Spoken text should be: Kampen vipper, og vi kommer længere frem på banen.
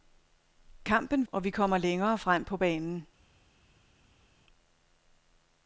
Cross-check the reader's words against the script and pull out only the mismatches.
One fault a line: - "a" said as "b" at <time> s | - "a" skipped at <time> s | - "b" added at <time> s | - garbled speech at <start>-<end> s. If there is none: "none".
- "vipper" skipped at 1.3 s